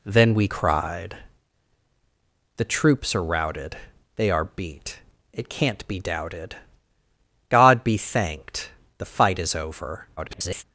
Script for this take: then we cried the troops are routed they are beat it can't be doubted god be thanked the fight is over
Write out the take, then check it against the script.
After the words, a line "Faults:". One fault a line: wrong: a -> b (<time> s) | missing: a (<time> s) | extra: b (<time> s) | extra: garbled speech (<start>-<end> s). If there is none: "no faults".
then we cried the troops are routed they are beat it can't be doubted god be thanked the fight is over [garbled]
Faults:
extra: garbled speech (10.2-10.6 s)